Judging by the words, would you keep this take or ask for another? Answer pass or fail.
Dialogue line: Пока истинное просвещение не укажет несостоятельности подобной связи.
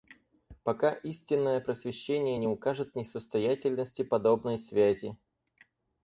pass